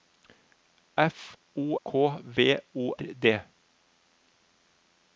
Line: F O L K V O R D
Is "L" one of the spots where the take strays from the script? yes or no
yes